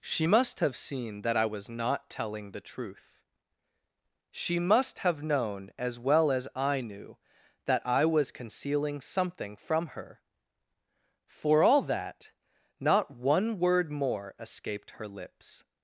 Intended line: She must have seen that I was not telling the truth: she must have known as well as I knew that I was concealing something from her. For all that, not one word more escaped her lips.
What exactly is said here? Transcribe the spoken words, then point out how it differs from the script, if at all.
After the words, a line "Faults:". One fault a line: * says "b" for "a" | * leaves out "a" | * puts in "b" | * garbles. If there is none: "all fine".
She must have seen that I was not telling the truth: she must have known as well as I knew that I was concealing something from her. For all that, not one word more escaped her lips.
Faults:
all fine